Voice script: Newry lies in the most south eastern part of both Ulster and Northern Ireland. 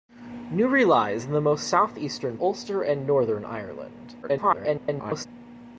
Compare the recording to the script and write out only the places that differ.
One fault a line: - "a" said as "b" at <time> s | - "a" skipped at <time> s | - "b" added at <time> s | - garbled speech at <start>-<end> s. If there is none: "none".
- "part of both" skipped at 2.4 s
- garbled speech at 4.2-5.3 s